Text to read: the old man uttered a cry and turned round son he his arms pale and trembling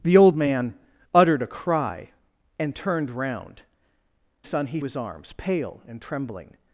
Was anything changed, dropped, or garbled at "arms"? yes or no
no